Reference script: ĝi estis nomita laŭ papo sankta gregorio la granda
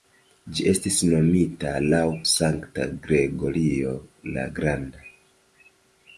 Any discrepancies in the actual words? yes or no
yes